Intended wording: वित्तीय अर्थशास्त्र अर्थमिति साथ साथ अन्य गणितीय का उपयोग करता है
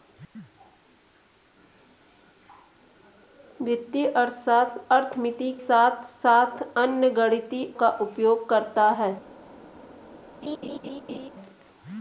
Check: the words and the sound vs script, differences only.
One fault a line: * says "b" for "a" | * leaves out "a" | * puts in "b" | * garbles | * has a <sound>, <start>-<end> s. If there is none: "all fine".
* has a laugh, 10.4-11.3 s